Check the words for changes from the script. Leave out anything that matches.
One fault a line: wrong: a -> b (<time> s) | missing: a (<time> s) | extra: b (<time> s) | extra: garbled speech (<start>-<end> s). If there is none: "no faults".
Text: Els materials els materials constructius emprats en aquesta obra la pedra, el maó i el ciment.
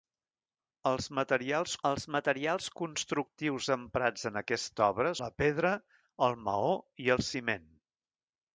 no faults